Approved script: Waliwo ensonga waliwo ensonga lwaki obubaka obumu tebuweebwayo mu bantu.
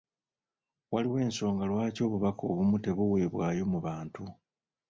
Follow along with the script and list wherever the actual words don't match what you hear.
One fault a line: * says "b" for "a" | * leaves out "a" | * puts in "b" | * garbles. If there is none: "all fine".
* leaves out "waliwo ensonga"